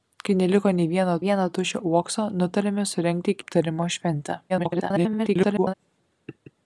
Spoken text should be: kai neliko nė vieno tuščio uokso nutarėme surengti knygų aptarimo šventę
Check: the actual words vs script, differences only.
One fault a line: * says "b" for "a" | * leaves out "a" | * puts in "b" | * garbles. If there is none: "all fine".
* puts in "vieno"
* leaves out "knygų"
* garbles